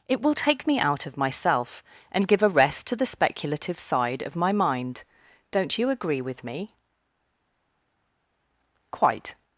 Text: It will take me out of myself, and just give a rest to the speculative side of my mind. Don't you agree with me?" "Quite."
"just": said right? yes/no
no